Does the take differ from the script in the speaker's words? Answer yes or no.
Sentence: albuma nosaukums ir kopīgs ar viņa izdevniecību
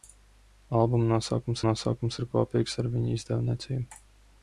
yes